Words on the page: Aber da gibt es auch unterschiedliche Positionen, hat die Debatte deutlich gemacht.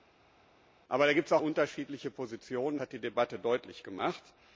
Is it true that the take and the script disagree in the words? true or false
false